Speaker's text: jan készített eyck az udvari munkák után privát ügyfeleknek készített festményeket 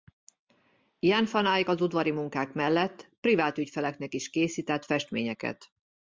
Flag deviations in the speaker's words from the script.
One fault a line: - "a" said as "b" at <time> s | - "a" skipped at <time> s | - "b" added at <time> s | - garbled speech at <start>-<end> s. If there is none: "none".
- "készített" said as "van" at 1.3 s
- "után" said as "mellett" at 2.5 s
- "is" added at 4.1 s